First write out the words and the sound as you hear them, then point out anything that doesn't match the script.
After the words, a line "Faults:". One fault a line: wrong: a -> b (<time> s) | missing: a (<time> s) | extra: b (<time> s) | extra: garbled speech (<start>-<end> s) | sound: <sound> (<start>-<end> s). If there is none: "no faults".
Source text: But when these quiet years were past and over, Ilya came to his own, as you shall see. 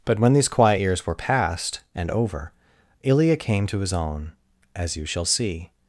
But when these quiet years were past and over, Ilya came to his own, as you shall see.
Faults:
no faults